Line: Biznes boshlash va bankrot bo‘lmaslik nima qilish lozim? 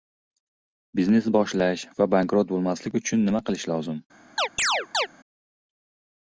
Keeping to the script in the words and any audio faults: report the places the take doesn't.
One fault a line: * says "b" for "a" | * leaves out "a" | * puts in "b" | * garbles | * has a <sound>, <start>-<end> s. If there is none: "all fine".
* puts in "uchun"
* has a chirp, 4.4-5.1 s